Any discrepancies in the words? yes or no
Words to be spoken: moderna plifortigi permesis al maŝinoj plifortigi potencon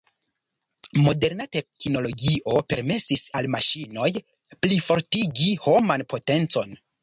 yes